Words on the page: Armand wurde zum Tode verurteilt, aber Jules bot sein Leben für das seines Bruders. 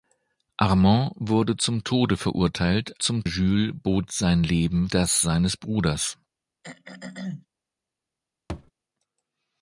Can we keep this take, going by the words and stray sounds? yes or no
no